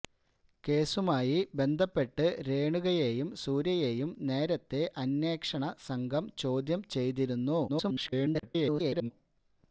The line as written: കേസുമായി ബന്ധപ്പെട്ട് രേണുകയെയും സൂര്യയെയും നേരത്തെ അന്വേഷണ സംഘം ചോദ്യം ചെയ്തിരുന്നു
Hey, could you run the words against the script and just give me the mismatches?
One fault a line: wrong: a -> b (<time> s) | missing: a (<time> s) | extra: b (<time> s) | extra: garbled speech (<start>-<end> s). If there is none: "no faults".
extra: garbled speech (7.7-9.1 s)